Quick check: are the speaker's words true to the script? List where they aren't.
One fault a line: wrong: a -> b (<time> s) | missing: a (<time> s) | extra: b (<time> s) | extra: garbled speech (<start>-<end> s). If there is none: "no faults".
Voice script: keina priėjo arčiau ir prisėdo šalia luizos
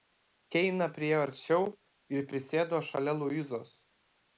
no faults